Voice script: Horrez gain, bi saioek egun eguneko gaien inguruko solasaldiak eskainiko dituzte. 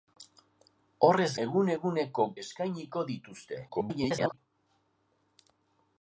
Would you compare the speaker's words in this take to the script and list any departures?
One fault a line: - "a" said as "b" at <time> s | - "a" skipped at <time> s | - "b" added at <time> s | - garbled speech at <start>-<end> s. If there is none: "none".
- "gain bi saioek" skipped at 1.3 s
- "gaien inguruko solasaldiak" skipped at 2.3 s
- garbled speech at 3.7-4.4 s